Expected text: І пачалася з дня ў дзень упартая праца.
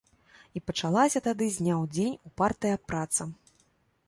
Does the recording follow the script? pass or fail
fail